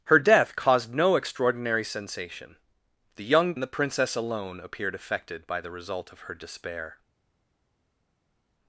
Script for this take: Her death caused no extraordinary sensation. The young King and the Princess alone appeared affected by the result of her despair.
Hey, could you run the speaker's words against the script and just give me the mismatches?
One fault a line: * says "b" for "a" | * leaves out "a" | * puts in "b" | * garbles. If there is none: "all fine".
* leaves out "King"